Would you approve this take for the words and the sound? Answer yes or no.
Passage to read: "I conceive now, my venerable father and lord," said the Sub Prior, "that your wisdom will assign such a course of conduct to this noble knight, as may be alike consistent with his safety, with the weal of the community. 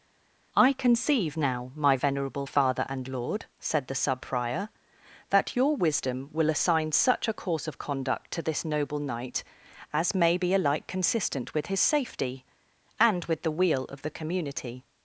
no